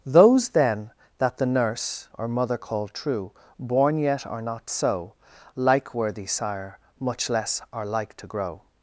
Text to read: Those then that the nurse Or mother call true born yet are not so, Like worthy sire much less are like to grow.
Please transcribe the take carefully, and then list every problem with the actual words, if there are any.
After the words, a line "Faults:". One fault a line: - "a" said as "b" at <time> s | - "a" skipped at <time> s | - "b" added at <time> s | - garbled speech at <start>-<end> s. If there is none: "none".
Those then that the nurse Or mother call true born yet are not so, Like worthy sire much less are like to grow.
Faults:
none